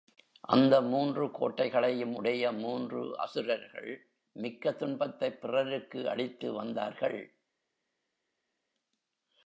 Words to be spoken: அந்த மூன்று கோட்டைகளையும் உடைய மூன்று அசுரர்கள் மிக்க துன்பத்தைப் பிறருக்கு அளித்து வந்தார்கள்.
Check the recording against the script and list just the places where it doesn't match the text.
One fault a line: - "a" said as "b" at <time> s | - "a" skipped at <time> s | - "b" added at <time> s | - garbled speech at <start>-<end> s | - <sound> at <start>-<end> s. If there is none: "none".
none